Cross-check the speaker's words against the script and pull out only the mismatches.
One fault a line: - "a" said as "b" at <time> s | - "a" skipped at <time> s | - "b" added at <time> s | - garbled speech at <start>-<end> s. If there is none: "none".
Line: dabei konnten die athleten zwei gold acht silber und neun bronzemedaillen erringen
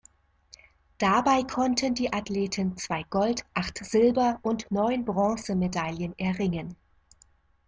none